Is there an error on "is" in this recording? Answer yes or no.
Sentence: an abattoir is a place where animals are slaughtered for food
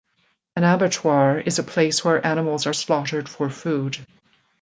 no